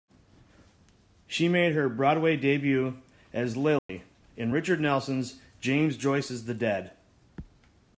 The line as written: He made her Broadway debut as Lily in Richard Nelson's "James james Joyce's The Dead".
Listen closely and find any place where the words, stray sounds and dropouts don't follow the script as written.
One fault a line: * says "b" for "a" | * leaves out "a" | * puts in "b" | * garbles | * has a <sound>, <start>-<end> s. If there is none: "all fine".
* says "She" for "He"
* has a dropout, 3.8-3.9 s
* leaves out "james"